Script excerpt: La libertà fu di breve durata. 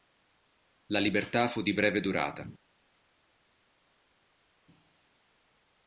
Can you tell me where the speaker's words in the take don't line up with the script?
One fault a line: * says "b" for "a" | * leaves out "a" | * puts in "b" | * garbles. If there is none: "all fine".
all fine